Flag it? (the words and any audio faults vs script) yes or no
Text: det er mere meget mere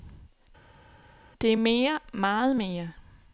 no